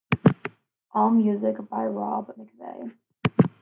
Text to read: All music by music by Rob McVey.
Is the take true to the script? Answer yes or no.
no